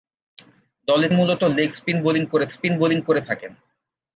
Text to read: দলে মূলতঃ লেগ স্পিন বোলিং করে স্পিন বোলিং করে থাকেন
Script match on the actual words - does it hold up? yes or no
yes